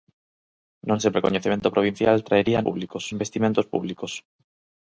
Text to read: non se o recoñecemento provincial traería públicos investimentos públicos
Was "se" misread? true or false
false